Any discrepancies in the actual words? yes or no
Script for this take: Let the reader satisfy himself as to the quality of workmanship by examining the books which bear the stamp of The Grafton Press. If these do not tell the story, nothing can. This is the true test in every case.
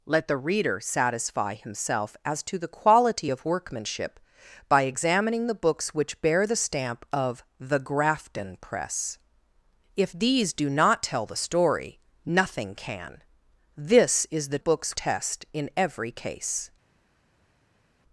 yes